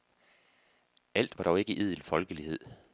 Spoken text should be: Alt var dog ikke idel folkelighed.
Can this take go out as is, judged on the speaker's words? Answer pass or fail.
pass